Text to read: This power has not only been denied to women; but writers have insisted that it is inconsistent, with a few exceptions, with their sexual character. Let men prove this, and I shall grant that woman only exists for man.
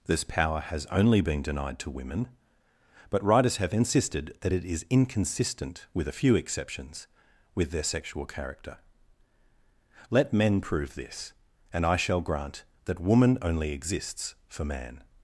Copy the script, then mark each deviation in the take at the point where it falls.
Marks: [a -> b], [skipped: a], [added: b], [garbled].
This power has [skipped: not] only been denied to women; but writers have insisted that it is inconsistent, with a few exceptions, with their sexual character. Let men prove this, and I shall grant that woman only exists for man.